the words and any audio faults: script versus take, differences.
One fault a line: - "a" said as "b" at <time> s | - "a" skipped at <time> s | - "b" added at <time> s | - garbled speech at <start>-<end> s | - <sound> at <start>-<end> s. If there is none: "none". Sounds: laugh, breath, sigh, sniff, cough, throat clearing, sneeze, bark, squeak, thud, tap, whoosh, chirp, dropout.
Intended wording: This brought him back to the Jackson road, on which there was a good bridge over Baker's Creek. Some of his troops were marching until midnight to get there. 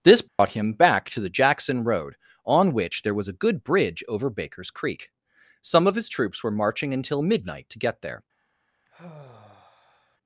- dropout at 0.3-0.4 s
- sigh at 8.9-10.2 s